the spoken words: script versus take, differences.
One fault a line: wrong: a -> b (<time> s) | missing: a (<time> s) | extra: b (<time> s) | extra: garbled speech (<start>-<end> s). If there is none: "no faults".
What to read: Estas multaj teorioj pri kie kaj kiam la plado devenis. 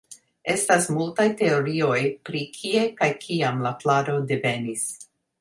no faults